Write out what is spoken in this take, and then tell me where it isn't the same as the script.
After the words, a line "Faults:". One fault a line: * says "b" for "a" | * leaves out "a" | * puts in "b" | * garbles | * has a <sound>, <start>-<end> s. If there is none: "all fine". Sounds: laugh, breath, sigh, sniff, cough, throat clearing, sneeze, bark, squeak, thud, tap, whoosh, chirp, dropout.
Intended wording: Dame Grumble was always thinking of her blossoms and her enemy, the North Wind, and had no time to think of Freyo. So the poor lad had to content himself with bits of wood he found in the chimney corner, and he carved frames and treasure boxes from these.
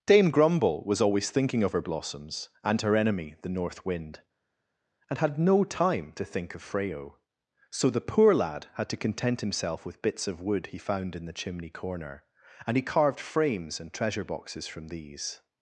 Dame Grumble was always thinking of her blossoms and her enemy, the North Wind, and had no time to think of Freyo. So the poor lad had to content himself with bits of wood he found in the chimney corner, and he carved frames and treasure boxes from these.
Faults:
all fine